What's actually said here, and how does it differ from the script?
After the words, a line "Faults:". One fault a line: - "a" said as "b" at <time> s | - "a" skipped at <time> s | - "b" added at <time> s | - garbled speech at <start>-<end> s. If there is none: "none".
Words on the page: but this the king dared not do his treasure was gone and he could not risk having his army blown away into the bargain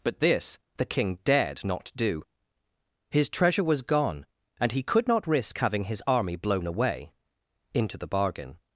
but this the king dared not do his treasure was gone and he could not risk having his army blown away into the bargain
Faults:
none